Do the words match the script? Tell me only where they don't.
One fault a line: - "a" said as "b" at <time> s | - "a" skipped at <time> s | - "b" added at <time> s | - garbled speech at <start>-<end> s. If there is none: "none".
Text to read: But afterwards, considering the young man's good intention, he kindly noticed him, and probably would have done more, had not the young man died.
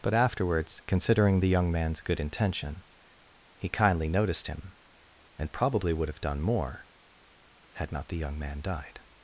none